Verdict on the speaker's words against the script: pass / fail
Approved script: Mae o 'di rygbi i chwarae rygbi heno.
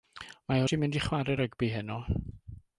fail